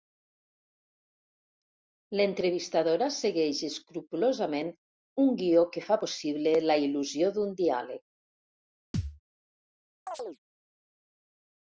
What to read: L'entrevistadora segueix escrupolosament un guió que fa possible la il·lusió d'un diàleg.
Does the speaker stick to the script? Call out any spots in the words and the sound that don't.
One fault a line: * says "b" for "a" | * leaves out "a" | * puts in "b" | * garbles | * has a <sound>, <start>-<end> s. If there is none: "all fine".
* has a thud, 8.9-9.2 s
* has a chirp, 10.1-10.4 s